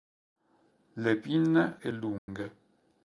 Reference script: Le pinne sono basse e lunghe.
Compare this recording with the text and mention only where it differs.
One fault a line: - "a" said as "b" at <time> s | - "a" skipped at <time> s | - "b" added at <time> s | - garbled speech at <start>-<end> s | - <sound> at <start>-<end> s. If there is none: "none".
- "sono basse" skipped at 1.8 s
- dropout at 2.2-2.3 s